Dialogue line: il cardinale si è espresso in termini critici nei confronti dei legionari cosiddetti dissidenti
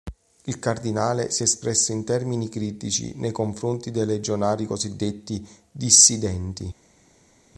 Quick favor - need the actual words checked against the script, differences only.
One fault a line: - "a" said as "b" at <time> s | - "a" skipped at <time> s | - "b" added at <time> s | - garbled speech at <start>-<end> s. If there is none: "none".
none